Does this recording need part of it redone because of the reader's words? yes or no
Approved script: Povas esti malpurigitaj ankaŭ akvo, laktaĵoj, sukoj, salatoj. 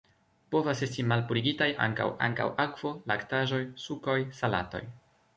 yes